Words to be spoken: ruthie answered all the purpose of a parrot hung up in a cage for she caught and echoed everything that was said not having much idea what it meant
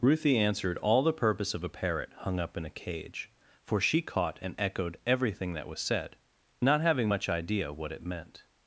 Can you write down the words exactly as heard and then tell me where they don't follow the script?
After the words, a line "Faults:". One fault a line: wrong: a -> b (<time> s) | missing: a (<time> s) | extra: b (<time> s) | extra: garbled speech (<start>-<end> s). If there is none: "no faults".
ruthie answered all the purpose of a parrot hung up in a cage for she caught and echoed everything that was said not having much idea what it meant
Faults:
no faults